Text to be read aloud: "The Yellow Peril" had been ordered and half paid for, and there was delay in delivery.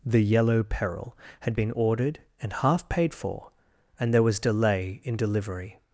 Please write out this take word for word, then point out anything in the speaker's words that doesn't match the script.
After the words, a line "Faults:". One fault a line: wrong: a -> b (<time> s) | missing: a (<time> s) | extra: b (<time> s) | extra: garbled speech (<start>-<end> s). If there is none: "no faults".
"The Yellow Peril" had been ordered and half paid for, and there was delay in delivery.
Faults:
no faults